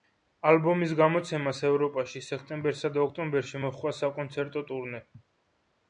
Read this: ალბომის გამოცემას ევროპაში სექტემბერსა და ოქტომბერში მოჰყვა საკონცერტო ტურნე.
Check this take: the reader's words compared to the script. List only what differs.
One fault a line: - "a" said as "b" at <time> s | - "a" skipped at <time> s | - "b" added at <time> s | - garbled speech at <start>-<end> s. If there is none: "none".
none